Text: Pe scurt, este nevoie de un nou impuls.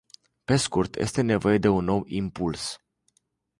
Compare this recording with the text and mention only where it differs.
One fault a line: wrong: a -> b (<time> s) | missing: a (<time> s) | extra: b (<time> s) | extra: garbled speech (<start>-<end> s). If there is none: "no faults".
no faults